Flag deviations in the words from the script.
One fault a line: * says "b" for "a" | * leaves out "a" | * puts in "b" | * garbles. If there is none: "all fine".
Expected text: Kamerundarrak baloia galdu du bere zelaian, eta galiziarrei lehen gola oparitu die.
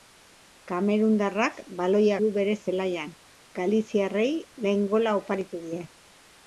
* leaves out "galdu"
* leaves out "eta"